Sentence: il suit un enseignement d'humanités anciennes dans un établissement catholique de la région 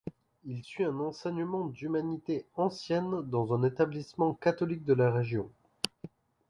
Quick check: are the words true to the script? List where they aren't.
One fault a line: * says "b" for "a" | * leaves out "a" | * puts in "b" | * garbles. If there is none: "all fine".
all fine